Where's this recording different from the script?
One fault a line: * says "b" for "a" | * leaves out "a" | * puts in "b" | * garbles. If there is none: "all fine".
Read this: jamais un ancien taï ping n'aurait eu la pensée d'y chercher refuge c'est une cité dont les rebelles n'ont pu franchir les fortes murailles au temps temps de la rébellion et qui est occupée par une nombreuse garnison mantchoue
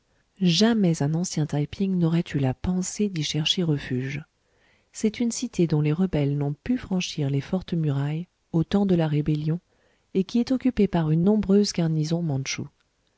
* leaves out "temps"